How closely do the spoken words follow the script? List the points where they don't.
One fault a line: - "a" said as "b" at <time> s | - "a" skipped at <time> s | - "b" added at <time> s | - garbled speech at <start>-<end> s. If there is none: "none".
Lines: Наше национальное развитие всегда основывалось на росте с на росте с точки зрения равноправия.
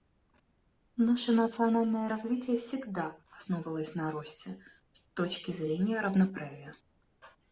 - "на росте с" skipped at 5.1 s